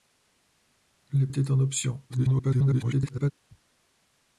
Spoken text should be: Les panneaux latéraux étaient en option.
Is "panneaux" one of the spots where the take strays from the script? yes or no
yes